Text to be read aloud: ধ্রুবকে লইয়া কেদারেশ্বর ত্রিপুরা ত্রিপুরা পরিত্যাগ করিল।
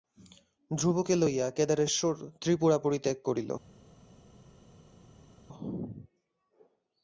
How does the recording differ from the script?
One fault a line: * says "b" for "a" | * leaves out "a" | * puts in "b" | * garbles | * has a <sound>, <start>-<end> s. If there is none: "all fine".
* leaves out "ত্রিপুরা"